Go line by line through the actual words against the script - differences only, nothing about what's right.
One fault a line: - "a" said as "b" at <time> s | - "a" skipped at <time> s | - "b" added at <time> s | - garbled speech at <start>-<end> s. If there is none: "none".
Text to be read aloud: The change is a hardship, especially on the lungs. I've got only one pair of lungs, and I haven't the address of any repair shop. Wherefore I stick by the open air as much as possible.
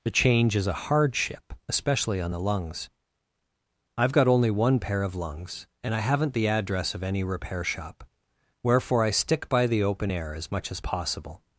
none